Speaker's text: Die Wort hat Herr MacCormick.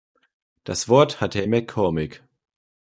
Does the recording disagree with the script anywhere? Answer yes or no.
yes